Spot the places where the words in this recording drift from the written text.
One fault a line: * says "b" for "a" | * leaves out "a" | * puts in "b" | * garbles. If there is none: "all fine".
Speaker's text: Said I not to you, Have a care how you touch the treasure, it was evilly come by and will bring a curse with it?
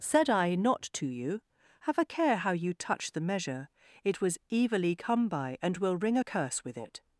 * says "measure" for "treasure"
* says "ring" for "bring"